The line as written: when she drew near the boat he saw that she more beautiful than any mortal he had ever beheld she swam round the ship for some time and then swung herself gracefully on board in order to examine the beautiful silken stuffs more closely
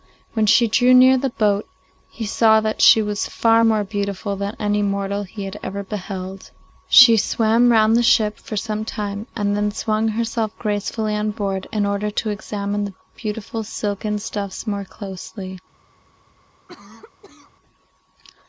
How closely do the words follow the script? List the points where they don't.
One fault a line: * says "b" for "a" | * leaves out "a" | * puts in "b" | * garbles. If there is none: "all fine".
* puts in "was far"